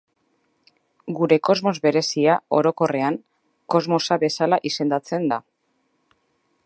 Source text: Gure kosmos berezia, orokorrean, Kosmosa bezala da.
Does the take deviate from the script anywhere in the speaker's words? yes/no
yes